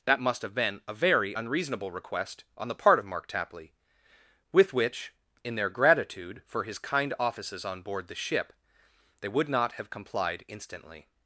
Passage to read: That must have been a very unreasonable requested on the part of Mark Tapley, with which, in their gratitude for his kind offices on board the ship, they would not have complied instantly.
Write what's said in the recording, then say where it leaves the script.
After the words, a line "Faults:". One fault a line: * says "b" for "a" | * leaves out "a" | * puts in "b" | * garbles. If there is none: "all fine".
That must have been a very unreasonable request on the part of Mark Tapley, with which, in their gratitude for his kind offices on board the ship, they would not have complied instantly.
Faults:
* says "request" for "requested"